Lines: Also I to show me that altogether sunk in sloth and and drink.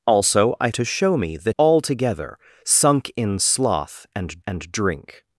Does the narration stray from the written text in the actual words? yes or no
no